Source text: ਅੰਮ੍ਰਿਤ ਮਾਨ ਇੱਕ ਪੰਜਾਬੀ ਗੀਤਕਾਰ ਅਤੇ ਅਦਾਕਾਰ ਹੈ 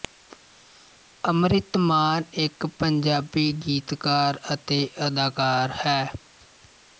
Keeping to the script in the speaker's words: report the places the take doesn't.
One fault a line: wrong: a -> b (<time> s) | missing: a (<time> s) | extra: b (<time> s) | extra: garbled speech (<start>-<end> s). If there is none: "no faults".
no faults